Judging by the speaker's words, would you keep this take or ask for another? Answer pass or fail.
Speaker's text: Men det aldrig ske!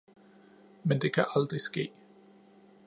fail